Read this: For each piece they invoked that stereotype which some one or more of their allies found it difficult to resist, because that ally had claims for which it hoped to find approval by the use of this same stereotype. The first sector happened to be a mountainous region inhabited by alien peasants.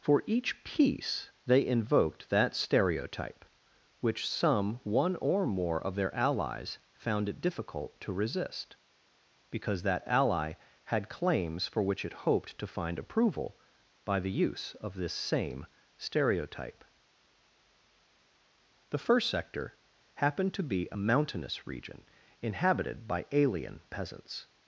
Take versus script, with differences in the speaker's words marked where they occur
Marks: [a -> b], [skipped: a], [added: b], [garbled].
For each piece they invoked that stereotype which some one or more of their allies found it difficult to resist, because that ally had claims for which it hoped to find approval by the use of this same stereotype. The first sector happened to be a mountainous region inhabited by alien peasants.